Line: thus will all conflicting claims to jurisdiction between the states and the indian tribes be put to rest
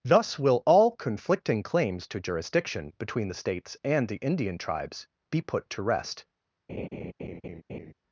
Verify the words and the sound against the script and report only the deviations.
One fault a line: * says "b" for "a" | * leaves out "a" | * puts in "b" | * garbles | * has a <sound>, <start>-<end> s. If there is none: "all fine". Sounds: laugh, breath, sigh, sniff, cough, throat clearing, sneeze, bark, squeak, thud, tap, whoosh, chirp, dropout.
* has a laugh, 6.7-7.9 s